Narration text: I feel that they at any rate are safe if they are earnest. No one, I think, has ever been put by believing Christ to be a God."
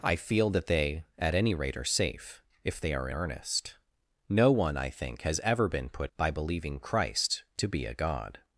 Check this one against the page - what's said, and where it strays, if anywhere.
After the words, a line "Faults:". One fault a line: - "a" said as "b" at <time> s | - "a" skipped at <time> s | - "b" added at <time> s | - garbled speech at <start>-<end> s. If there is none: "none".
I feel that they at any rate are safe if they are earnest. No one, I think, has ever been put by believing Christ to be a God."
Faults:
none